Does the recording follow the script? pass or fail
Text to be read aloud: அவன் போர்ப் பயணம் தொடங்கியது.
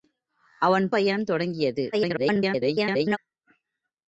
fail